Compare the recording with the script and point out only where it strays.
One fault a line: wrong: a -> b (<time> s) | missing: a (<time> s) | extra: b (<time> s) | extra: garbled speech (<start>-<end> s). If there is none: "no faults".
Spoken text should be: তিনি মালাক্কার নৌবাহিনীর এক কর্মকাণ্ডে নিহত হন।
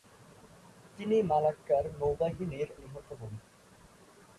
missing: এক কর্মকাণ্ডে (2.7 s)